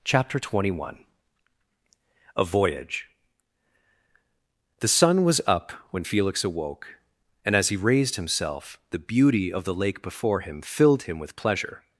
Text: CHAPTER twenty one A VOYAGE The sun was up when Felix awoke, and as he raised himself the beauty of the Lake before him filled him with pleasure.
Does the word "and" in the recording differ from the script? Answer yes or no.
no